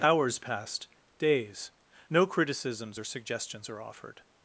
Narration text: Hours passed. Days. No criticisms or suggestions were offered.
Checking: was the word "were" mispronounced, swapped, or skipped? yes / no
yes